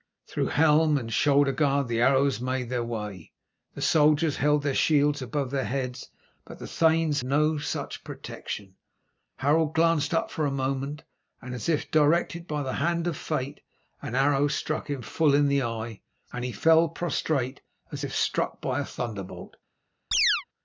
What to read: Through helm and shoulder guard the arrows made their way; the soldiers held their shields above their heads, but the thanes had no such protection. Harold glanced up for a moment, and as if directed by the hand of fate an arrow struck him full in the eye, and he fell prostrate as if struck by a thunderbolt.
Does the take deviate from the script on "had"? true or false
true